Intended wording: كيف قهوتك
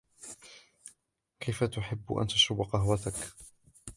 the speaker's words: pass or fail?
fail